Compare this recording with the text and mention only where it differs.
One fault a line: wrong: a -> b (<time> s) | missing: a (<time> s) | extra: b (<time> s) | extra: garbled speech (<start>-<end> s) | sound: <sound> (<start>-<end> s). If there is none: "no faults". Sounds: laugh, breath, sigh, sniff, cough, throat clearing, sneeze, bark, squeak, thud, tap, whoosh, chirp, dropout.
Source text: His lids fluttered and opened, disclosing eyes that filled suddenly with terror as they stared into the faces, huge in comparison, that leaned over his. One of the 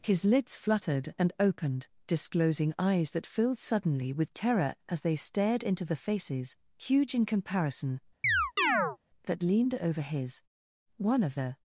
sound: chirp (8.2-9.0 s)